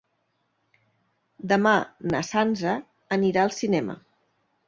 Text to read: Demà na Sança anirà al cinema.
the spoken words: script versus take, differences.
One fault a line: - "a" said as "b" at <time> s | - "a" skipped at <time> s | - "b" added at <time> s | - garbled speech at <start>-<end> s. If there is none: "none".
none